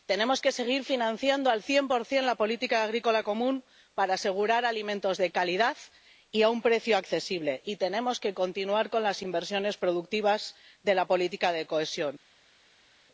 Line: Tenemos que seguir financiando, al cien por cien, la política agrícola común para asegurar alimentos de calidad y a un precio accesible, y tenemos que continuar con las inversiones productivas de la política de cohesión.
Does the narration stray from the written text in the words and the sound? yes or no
no